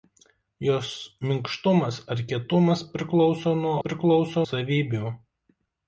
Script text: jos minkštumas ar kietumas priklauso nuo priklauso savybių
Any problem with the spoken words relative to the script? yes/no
no